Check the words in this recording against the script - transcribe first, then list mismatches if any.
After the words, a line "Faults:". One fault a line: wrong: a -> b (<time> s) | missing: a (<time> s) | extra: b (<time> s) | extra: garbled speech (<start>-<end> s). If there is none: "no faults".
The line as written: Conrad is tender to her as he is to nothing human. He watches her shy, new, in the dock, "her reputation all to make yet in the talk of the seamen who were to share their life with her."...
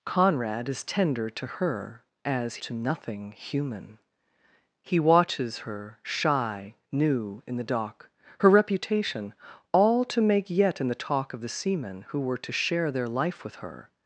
Conrad is tender to her as to nothing human. He watches her shy, new, in the dock, "her reputation all to make yet in the talk of the seamen who were to share their life with her."...
Faults:
missing: he is (2.6 s)